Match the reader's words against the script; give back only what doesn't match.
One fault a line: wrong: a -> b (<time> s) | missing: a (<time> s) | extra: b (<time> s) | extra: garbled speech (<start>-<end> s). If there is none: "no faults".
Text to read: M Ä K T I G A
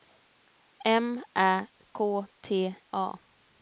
missing: I G (2.8 s)